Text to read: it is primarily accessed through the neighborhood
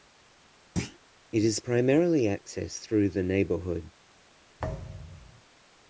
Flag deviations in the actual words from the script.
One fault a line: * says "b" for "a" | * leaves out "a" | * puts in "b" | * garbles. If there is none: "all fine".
all fine